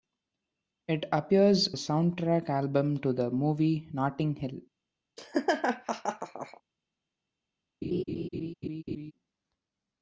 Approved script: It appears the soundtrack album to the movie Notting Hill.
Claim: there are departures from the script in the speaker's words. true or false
false